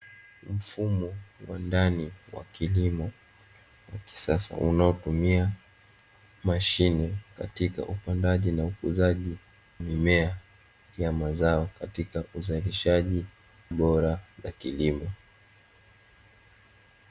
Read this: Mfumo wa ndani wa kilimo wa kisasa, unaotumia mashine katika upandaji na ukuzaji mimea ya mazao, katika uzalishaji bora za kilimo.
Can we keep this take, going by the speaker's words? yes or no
yes